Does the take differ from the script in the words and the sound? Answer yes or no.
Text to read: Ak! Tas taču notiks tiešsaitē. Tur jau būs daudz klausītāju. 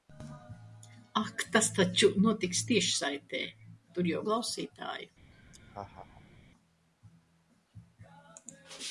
yes